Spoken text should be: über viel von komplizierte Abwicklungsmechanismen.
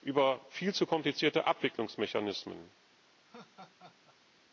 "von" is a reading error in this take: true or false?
true